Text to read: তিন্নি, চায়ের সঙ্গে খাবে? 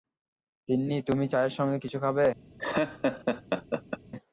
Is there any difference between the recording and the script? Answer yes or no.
yes